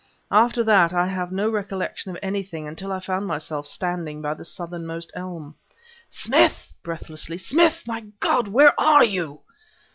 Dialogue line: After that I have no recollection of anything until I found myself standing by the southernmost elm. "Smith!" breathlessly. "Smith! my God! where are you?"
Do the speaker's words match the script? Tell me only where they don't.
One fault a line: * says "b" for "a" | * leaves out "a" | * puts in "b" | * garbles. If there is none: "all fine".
all fine